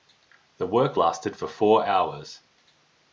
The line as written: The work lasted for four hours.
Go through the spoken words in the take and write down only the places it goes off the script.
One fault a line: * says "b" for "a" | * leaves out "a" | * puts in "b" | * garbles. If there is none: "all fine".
all fine